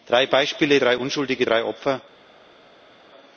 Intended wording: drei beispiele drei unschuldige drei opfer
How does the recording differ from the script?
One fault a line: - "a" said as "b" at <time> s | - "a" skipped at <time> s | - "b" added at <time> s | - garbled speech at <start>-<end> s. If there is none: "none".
none